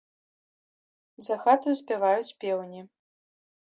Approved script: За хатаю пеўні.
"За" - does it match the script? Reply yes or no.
yes